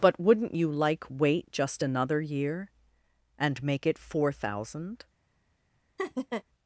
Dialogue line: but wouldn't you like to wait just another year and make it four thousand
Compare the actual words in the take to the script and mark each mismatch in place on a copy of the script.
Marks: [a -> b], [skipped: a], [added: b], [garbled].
but wouldn't you like [skipped: to] wait just another year and make it four thousand